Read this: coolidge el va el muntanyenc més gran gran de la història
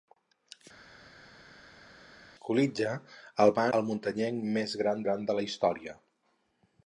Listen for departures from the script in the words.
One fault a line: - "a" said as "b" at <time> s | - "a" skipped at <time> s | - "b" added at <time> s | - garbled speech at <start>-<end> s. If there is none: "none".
none